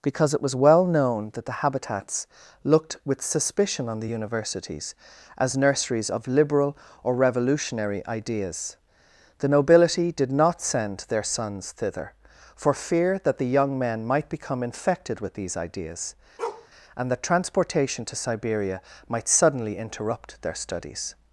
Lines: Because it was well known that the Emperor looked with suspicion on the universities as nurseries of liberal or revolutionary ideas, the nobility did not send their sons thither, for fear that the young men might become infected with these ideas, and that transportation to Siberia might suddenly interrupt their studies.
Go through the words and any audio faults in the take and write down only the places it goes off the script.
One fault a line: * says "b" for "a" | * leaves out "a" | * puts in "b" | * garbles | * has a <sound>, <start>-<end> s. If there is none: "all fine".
* says "Habitats" for "Emperor"
* has a bark, 16.4-16.7 s